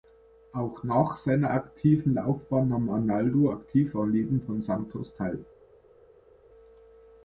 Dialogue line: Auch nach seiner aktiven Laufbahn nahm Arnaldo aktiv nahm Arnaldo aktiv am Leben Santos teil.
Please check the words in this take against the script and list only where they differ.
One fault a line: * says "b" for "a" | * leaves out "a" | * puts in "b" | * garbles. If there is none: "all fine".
* leaves out "nahm Arnaldo aktiv"
* puts in "von"